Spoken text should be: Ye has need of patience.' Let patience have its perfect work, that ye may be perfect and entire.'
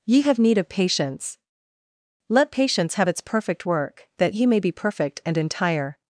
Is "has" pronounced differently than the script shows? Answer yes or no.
yes